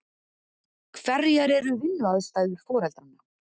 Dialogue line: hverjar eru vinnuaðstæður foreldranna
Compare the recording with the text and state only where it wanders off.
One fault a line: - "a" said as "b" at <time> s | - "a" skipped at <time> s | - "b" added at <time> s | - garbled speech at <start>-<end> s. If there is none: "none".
none